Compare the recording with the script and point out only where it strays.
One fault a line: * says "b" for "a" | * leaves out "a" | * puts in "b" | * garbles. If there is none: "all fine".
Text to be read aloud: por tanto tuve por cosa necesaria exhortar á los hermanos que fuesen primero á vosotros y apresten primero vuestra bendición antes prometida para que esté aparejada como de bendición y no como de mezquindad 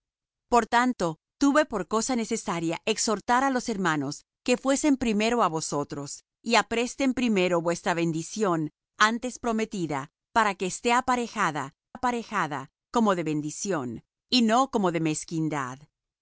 * puts in "aparejada"